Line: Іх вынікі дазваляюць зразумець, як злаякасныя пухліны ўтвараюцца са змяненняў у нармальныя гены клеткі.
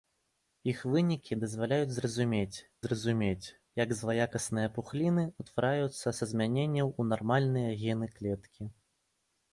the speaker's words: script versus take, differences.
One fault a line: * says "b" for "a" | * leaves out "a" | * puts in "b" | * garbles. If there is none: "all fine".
* puts in "зразумець"